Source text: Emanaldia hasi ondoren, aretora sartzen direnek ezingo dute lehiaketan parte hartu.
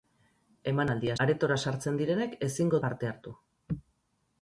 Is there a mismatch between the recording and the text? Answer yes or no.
yes